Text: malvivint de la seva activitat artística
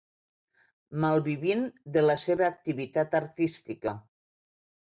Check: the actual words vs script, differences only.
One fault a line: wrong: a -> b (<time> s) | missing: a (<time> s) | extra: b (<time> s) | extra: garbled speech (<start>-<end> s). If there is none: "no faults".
no faults